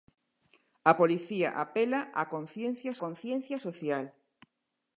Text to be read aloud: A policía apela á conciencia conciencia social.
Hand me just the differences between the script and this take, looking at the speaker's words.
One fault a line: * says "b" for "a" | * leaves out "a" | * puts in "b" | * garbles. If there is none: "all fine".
all fine